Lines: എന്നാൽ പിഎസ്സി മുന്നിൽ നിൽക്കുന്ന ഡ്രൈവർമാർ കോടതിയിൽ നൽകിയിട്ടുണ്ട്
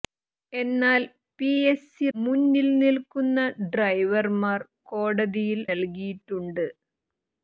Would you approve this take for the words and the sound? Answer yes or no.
yes